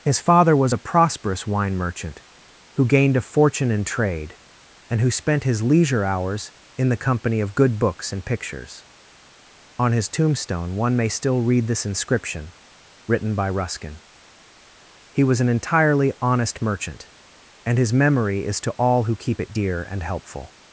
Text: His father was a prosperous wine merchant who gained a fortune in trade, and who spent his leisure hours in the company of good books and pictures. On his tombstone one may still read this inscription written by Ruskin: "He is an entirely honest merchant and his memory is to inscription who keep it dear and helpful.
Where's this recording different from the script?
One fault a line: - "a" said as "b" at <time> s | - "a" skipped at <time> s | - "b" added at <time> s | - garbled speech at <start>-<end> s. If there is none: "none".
- "is" said as "was" at 15.2 s
- "inscription" said as "all" at 18.8 s